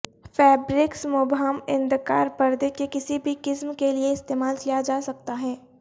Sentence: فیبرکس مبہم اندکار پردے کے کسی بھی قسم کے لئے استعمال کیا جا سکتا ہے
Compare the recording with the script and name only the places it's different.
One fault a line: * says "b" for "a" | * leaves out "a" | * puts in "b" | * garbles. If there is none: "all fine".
all fine